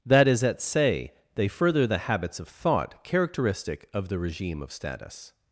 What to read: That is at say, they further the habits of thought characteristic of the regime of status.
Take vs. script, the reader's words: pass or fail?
pass